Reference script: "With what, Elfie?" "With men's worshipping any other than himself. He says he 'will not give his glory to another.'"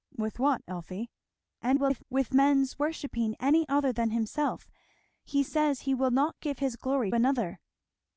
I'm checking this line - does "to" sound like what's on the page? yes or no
no